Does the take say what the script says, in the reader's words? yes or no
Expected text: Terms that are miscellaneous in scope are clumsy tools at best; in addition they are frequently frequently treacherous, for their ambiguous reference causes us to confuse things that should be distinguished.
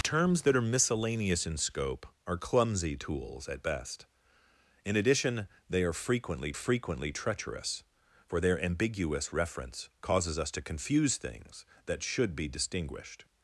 yes